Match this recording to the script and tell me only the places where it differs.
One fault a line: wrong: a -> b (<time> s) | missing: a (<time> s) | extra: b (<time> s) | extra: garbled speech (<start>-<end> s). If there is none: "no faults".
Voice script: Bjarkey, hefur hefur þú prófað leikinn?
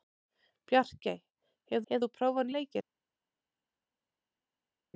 no faults